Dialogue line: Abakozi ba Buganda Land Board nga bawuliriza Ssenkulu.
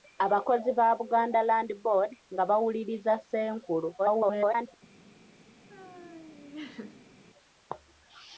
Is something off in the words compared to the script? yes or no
yes